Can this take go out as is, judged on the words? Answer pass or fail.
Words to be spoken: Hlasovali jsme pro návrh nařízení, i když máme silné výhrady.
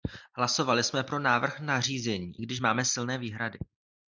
pass